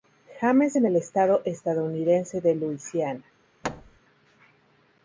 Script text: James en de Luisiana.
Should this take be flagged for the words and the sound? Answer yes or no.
yes